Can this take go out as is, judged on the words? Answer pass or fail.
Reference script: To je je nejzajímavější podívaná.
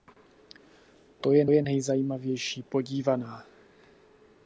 pass